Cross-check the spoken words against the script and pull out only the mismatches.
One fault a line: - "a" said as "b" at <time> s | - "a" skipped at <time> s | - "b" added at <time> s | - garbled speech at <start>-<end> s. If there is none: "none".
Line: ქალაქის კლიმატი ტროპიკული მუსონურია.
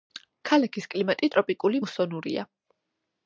none